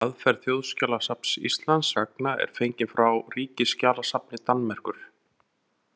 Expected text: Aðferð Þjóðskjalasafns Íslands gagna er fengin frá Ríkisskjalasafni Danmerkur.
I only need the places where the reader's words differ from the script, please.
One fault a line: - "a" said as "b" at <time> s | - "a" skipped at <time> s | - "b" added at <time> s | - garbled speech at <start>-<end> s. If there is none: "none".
none